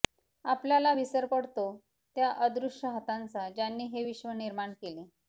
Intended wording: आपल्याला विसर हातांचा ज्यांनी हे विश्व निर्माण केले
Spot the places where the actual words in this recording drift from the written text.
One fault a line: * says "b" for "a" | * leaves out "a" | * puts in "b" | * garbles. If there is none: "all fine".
* puts in "पडतो त्या अदृश्य"